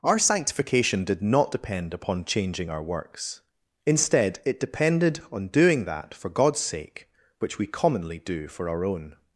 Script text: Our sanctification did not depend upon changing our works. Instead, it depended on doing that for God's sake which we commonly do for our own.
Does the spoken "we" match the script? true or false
true